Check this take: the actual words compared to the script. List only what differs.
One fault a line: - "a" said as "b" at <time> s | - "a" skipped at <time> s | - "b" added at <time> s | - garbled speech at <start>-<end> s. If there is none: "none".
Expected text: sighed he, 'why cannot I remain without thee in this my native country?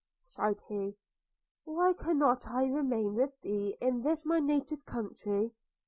- "without" said as "with" at 3.1 s